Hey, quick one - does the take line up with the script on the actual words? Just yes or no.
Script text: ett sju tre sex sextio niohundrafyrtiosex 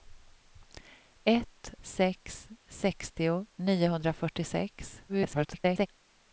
no